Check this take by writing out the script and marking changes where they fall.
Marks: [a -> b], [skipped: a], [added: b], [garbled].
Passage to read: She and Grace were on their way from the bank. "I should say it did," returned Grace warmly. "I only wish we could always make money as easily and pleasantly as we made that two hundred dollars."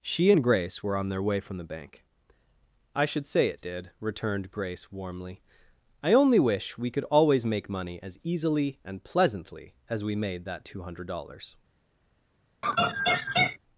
She and Grace were on their way from the bank. "I should say it did," returned Grace warmly. "I only wish we could always make money as easily and pleasantly as we made that two hundred dollars."